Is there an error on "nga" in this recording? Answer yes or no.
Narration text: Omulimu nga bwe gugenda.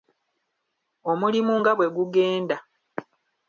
no